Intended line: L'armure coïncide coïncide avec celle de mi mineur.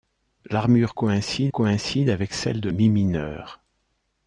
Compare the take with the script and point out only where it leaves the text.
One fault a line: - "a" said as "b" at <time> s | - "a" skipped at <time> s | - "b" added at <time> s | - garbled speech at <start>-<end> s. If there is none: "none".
none